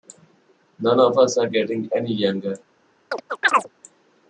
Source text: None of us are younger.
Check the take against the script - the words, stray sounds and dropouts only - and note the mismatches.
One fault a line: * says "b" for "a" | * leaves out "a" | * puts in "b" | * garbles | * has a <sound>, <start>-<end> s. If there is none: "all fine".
* puts in "getting any"
* has a chirp, 3.1-3.7 s